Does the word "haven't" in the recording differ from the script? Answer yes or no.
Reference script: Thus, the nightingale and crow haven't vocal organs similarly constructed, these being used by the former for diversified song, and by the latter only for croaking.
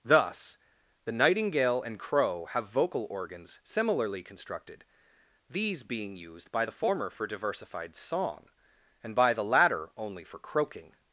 yes